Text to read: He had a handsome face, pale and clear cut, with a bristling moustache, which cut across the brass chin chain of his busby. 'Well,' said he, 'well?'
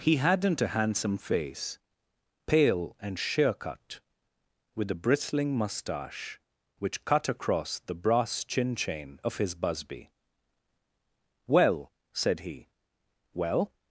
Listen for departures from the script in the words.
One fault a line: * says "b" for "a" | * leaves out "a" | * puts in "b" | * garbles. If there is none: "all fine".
* says "hadn't" for "had"
* says "sheer" for "clear"